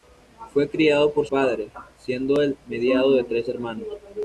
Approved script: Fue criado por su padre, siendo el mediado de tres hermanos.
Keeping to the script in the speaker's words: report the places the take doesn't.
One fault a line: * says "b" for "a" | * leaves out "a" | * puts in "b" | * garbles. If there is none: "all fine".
* leaves out "su"